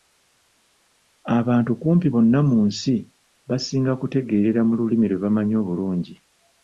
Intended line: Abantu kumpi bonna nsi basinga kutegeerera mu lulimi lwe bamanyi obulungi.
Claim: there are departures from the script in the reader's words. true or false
true